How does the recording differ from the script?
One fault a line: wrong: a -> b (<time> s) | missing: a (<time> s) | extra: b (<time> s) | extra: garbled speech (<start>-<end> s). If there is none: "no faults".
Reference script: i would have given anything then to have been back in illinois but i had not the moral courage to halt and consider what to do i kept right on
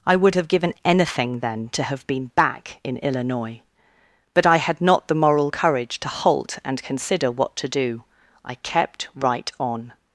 no faults